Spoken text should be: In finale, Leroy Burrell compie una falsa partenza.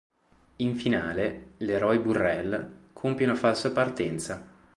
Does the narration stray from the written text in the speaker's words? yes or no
no